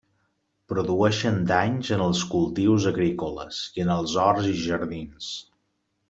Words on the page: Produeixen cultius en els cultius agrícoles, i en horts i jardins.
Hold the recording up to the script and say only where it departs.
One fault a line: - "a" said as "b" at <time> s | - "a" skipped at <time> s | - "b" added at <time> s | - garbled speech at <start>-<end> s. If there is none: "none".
- "cultius" said as "danys" at 1.5 s
- "els" added at 4.0 s